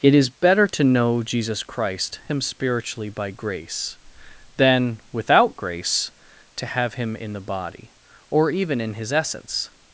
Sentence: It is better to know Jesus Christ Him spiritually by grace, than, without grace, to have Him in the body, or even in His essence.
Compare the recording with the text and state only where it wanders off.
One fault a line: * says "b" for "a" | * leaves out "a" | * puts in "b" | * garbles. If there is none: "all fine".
all fine